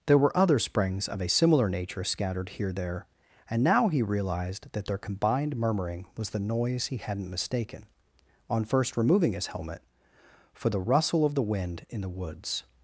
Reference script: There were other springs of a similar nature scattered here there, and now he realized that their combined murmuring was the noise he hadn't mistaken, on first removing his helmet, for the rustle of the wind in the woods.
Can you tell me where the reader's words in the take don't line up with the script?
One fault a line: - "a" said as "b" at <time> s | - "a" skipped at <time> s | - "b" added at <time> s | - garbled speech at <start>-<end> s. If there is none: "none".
none